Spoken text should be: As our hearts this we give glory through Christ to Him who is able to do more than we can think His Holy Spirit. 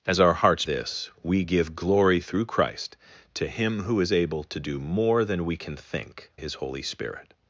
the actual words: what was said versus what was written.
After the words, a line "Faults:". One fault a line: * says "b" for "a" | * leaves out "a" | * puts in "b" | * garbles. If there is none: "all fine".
As our hearts this we give glory through Christ to Him who is able to do more than we can think His Holy Spirit.
Faults:
all fine